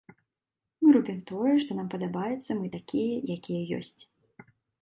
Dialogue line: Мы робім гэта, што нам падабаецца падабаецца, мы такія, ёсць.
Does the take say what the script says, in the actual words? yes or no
no